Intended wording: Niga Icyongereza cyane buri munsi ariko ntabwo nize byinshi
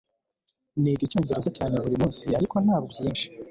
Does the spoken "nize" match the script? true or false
false